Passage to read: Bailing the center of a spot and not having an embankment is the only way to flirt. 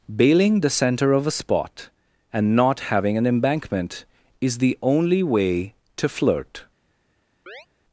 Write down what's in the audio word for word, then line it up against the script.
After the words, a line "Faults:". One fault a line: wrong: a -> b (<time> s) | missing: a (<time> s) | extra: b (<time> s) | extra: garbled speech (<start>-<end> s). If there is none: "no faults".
Bailing the center of a spot and not having an embankment is the only way to flirt.
Faults:
no faults